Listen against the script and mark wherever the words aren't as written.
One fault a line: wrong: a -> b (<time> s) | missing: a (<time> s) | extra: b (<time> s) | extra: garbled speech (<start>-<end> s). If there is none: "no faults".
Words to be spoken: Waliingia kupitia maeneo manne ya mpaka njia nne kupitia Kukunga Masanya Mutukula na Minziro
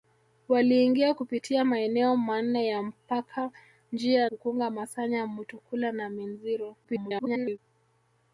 missing: nne kupitia (4.3 s)
extra: garbled speech (6.8-7.6 s)